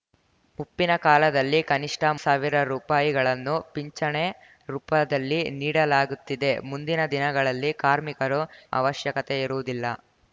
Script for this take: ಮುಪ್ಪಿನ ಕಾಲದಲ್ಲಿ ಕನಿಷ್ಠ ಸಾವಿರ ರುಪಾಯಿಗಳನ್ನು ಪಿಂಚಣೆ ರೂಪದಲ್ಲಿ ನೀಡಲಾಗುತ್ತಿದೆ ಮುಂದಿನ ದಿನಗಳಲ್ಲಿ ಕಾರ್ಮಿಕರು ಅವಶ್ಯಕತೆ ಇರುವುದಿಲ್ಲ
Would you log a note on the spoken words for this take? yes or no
no